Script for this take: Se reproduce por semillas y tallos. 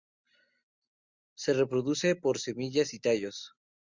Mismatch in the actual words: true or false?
false